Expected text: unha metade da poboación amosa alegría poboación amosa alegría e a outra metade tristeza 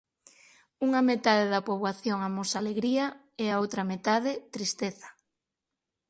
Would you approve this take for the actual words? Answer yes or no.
no